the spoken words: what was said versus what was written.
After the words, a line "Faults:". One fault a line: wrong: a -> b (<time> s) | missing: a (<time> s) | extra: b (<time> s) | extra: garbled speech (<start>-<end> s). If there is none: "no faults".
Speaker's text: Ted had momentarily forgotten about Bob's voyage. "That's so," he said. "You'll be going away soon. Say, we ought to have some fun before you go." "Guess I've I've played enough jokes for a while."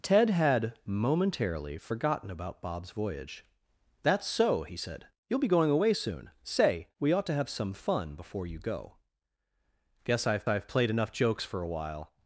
Ted had momentarily forgotten about Bob's voyage. "That's so," he said. "You'll be going away soon. Say, we ought to have some fun before you go." "Guess I've I've played enough jokes for a while."
Faults:
no faults